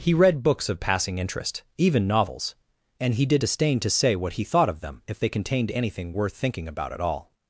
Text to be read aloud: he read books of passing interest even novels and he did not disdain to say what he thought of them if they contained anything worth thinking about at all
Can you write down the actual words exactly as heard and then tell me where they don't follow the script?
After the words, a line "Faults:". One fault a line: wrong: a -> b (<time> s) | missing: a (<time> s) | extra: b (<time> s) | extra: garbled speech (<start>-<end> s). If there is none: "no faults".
he read books of passing interest even novels and he did disdain to say what he thought of them if they contained anything worth thinking about at all
Faults:
missing: not (3.4 s)